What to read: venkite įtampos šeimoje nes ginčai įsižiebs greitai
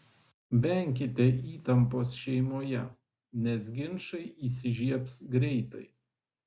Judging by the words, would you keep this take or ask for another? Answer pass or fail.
pass